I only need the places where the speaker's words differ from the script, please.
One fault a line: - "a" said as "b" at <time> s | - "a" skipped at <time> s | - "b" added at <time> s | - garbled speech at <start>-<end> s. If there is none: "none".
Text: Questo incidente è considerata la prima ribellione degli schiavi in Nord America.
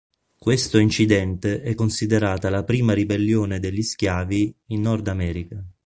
none